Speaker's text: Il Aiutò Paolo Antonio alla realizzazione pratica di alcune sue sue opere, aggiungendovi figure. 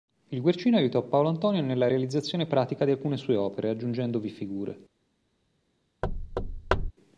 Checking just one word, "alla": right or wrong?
wrong